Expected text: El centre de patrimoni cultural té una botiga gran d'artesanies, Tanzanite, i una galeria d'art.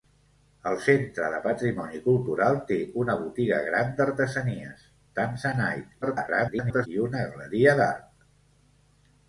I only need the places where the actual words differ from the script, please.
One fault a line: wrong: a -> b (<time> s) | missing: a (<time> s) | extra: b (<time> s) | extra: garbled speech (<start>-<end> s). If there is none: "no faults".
extra: garbled speech (6.0-6.9 s)